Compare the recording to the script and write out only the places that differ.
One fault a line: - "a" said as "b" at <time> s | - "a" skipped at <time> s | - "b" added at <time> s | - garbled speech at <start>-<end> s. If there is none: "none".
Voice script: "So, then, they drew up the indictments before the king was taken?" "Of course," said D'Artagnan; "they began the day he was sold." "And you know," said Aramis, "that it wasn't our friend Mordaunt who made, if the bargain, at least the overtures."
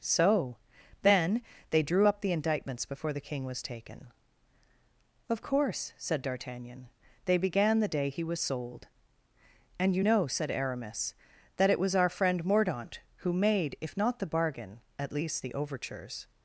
- "wasn't" said as "was" at 11.8 s
- "not" added at 14.0 s